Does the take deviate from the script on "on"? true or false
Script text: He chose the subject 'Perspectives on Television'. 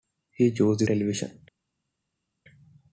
true